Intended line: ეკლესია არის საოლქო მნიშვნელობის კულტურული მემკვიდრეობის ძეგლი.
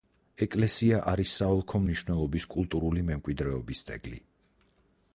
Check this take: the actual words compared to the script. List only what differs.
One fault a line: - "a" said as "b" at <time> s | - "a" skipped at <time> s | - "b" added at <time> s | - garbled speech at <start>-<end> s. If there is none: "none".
none